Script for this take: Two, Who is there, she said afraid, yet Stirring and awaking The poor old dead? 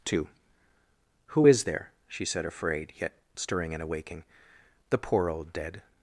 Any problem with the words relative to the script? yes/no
no